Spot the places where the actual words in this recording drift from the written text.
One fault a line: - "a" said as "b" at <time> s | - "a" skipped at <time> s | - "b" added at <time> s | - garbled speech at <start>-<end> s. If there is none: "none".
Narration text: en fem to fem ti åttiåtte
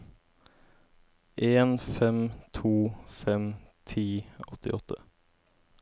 none